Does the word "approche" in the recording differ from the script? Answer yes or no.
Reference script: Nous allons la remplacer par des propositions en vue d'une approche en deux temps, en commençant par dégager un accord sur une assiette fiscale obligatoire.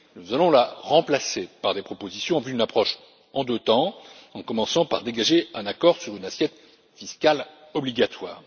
no